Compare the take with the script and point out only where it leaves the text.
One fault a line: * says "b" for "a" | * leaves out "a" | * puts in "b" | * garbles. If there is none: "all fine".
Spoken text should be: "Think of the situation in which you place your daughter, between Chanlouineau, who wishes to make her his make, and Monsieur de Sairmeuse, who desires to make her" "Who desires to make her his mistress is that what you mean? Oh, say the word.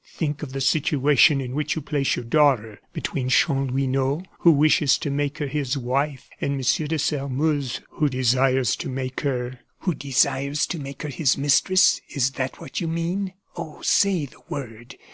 * says "wife" for "make"